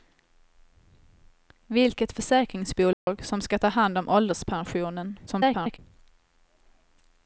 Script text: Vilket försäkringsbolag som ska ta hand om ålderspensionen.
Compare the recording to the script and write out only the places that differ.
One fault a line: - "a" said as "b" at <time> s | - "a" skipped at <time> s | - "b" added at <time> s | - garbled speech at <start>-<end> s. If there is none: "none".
- garbled speech at 5.3-5.8 s